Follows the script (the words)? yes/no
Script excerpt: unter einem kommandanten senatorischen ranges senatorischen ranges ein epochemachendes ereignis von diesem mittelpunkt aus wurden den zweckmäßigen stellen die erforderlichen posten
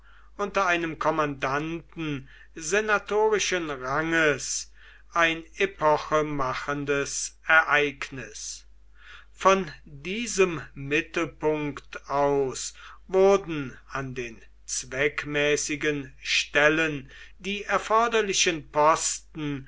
no